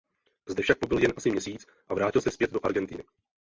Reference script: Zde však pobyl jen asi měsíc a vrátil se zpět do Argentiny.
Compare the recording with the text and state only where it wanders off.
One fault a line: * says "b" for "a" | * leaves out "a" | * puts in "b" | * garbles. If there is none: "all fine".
all fine